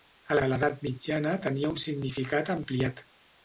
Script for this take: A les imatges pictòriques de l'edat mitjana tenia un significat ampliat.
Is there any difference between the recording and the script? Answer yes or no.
yes